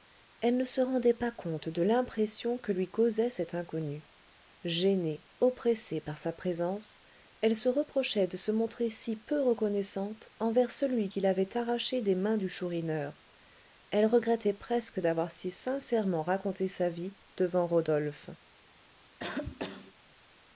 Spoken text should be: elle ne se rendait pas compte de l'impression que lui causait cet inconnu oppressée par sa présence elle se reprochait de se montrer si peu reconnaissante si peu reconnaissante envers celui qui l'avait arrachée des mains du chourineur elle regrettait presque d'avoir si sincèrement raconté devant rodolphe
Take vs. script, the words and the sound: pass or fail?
fail